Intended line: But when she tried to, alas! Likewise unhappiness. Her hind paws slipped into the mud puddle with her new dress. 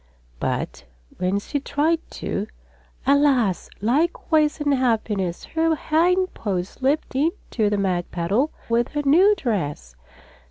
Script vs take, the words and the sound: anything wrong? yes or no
no